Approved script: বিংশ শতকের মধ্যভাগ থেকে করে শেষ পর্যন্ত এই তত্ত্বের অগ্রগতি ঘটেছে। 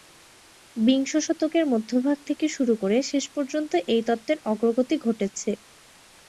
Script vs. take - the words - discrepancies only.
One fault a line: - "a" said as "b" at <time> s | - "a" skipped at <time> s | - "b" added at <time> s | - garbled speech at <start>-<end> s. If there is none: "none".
- "শুরু" added at 2.5 s